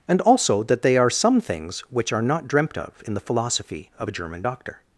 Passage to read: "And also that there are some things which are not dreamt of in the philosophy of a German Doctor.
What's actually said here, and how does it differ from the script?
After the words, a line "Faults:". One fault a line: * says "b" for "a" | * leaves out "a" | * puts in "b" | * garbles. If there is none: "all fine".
"And also that they are some things which are not dreamt of in the philosophy of a German Doctor.
Faults:
* says "they" for "there"